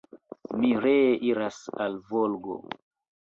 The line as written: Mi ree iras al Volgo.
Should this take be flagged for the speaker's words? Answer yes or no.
no